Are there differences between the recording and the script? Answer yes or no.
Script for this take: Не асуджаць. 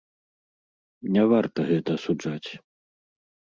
yes